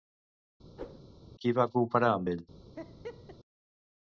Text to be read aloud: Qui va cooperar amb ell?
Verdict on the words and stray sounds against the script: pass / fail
fail